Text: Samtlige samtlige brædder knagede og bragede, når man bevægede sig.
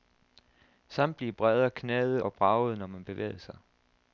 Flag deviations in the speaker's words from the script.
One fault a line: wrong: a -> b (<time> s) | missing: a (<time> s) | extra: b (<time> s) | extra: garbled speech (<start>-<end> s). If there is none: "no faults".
missing: samtlige (1.3 s)